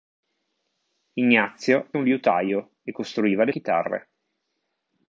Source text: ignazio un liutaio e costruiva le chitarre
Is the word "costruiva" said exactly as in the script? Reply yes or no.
yes